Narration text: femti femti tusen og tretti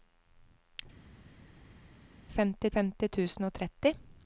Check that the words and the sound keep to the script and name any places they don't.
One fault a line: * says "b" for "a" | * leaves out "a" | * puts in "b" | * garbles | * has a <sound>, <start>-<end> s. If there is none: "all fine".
all fine